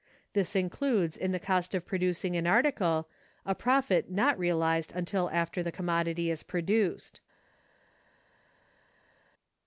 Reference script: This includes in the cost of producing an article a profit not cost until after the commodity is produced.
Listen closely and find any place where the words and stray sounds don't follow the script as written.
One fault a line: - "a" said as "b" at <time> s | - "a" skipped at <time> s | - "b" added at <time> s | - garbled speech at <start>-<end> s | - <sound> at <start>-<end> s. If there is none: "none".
- "cost" said as "realized" at 4.4 s